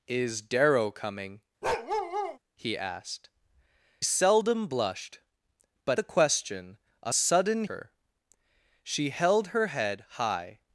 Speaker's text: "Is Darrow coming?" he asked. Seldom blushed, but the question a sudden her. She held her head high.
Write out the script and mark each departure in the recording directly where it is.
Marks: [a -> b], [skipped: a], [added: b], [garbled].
"Is Darrow coming?" he asked. Seldom blushed, but the question a sudden her. She held her head high.